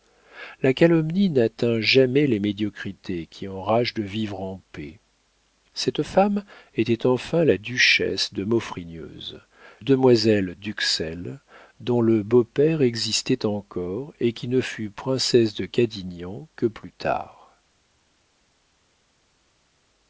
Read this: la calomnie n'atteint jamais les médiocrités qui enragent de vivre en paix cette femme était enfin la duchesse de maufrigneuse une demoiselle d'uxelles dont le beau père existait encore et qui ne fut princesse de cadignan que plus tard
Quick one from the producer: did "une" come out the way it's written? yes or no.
no